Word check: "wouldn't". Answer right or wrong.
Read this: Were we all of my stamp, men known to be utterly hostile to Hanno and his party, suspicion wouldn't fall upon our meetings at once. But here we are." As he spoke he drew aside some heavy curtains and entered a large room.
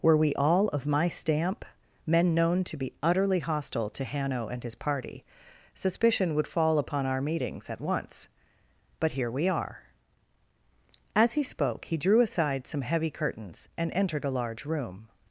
wrong